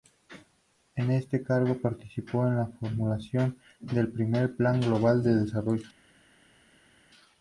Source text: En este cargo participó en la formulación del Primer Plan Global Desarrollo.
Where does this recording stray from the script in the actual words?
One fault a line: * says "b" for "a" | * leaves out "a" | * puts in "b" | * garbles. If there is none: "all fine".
* puts in "de"